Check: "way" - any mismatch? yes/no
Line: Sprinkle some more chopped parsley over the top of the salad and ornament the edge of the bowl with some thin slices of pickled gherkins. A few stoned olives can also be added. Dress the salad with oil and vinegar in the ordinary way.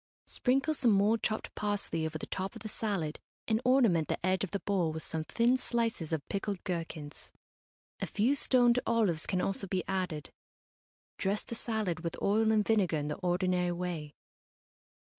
no